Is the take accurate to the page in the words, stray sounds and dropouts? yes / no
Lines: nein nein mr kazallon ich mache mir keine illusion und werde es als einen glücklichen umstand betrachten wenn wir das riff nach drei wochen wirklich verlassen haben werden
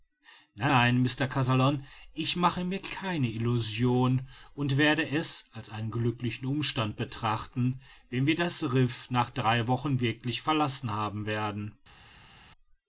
yes